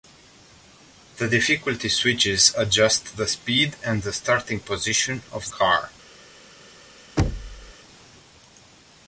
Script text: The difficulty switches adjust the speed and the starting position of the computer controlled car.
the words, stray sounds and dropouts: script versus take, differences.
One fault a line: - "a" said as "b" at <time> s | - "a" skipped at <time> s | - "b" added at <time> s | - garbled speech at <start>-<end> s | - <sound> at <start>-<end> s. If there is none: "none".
- "the computer controlled" skipped at 5.5 s
- thud at 7.2-7.7 s